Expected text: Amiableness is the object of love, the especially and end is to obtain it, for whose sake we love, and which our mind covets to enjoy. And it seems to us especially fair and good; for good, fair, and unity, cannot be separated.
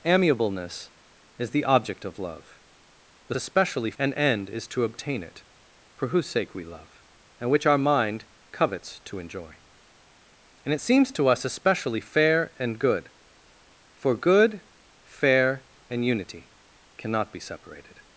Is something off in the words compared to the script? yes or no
no